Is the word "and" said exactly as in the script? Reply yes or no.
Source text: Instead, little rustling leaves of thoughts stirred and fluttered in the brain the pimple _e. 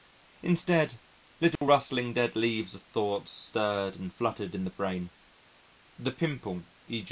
yes